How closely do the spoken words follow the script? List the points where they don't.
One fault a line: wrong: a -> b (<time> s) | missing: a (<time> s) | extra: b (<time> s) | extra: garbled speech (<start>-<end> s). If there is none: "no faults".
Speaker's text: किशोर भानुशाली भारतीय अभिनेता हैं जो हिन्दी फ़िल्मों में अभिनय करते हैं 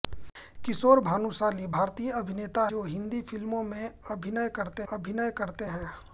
missing: हैं (2.7 s)
extra: अभिनय करते (4.9 s)